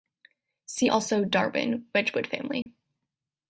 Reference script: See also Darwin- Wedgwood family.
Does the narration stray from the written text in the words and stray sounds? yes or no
yes